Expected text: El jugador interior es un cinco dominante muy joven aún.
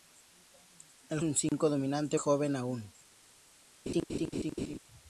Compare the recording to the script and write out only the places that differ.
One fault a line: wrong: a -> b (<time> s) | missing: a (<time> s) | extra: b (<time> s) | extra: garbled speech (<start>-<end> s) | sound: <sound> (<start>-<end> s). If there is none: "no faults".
missing: jugador interior es (1.2 s)
sound: dropout (1.5-1.5 s)
missing: muy (2.2 s)
sound: laugh (3.9-4.8 s)